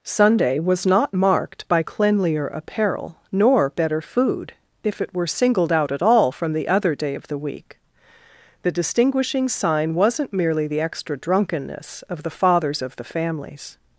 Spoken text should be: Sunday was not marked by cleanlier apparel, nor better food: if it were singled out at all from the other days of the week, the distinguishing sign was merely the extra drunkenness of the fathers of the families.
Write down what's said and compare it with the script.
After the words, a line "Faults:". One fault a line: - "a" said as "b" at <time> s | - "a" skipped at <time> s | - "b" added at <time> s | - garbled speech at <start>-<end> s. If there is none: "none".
Sunday was not marked by cleanlier apparel, nor better food: if it were singled out at all from the other day of the week, the distinguishing sign wasn't merely the extra drunkenness of the fathers of the families.
Faults:
- "days" said as "day" at 6.9 s
- "was" said as "wasn't" at 9.9 s